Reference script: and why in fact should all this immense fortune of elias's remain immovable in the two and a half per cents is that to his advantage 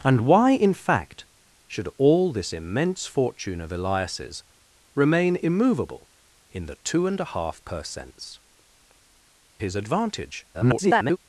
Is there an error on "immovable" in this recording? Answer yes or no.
no